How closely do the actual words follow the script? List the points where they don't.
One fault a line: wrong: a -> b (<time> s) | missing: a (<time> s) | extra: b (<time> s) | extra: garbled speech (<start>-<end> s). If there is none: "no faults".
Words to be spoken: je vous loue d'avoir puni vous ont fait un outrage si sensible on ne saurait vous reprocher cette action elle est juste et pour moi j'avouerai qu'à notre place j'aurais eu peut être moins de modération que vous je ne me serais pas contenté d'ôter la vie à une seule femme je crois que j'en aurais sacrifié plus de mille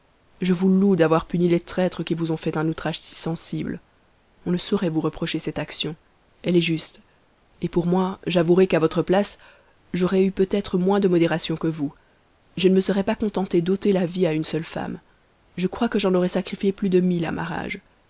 extra: les traîtres qui (1.5 s)
wrong: notre -> votre (8.8 s)